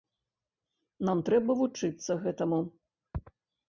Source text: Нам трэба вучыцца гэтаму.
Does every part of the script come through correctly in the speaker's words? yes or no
yes